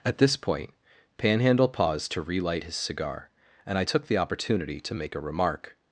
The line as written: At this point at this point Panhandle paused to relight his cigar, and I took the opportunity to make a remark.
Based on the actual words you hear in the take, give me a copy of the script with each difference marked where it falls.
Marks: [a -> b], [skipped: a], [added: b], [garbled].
At this point [skipped: at this point] Panhandle paused to relight his cigar, and I took the opportunity to make a remark.